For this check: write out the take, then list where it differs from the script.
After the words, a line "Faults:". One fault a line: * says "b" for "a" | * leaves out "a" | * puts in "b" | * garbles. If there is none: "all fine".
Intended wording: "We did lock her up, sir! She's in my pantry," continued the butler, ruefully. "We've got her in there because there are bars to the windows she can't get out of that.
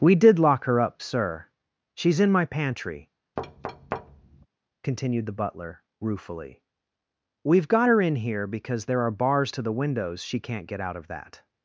"We did lock her up, sir! She's in my pantry," continued the butler, ruefully. "We've got her in here because there are bars to the windows she can't get out of that.
Faults:
* says "here" for "there"